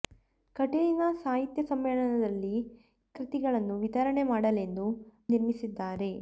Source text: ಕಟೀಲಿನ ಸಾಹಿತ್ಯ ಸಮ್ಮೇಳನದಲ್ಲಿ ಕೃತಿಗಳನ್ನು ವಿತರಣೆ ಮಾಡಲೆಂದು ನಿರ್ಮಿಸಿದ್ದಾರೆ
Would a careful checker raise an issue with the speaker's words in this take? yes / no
no